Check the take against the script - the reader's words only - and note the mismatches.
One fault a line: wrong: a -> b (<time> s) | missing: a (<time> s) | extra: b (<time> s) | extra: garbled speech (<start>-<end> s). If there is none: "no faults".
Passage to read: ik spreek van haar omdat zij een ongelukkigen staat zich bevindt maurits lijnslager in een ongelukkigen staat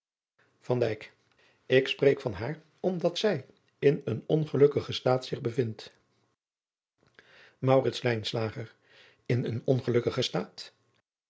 extra: in (3.8 s)